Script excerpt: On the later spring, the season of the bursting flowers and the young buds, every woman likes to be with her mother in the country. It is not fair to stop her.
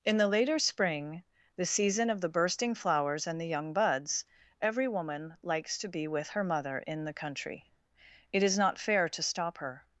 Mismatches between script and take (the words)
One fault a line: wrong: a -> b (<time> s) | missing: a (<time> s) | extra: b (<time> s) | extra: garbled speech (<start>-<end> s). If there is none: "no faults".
wrong: On -> In (0.0 s)